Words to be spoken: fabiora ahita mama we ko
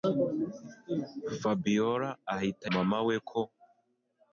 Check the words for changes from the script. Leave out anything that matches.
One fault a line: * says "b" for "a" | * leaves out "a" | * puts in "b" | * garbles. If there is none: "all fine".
all fine